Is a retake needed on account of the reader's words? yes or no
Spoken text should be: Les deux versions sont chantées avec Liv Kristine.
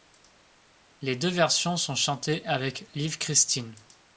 no